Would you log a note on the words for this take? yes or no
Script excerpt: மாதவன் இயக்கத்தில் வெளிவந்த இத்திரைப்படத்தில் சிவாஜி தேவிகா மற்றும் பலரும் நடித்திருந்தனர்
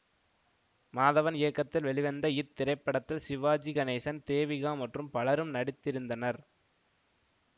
yes